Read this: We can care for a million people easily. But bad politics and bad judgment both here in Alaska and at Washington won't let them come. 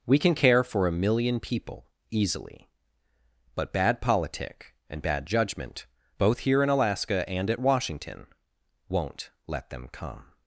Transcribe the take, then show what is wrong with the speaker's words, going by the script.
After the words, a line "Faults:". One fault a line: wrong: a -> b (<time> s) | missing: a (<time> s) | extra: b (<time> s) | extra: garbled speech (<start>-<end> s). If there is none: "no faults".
We can care for a million people easily. But bad politic and bad judgment both here in Alaska and at Washington won't let them come.
Faults:
wrong: politics -> politic (4.0 s)